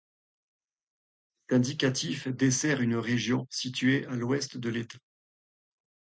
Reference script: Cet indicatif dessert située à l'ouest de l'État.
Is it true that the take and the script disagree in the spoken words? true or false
true